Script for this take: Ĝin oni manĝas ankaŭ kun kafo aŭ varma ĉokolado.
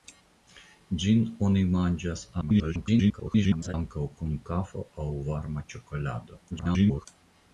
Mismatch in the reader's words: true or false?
true